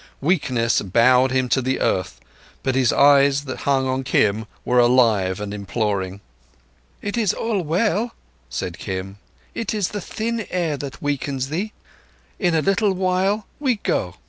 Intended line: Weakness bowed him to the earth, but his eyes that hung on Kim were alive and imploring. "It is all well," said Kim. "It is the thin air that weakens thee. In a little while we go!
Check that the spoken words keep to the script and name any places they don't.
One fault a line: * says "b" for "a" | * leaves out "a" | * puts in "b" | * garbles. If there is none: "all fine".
all fine